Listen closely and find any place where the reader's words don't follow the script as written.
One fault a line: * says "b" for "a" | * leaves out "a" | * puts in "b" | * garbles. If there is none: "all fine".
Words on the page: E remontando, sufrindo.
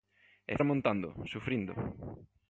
all fine